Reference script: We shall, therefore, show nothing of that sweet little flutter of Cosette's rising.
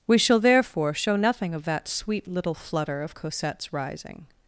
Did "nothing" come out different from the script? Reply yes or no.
no